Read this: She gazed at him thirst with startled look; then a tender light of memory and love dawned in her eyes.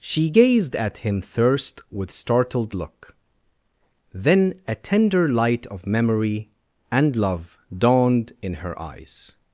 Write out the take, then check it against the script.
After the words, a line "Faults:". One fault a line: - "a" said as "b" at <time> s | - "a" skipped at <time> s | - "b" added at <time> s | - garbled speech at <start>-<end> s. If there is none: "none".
She gazed at him thirst with startled look; then a tender light of memory and love dawned in her eyes.
Faults:
none